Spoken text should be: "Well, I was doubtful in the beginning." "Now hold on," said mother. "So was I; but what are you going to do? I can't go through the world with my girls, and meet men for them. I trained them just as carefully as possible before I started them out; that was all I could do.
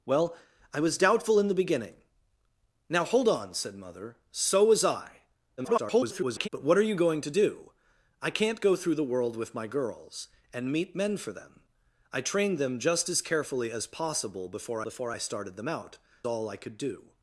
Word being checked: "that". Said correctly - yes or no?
no